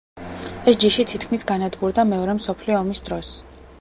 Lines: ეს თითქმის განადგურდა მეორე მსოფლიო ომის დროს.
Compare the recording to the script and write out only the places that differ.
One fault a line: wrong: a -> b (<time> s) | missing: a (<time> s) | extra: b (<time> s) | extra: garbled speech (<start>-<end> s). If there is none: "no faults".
extra: ჯიში (0.8 s)